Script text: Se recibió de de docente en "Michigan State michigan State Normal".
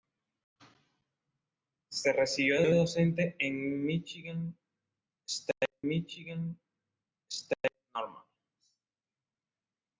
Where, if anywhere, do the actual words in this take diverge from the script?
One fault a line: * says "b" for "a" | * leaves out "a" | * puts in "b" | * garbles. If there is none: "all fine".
all fine